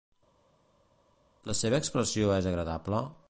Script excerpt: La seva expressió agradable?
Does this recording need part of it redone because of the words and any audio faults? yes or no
yes